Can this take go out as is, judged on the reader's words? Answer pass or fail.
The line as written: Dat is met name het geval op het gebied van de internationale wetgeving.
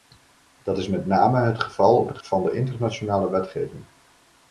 fail